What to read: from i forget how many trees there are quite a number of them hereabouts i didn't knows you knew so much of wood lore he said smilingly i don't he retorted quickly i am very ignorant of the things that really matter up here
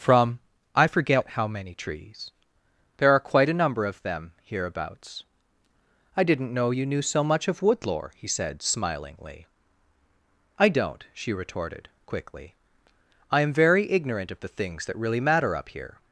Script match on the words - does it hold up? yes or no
no